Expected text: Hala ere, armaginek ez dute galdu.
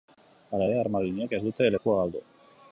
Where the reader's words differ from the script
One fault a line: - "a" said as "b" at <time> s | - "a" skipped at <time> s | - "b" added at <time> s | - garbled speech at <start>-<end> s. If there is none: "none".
- "lekua" added at 1.7 s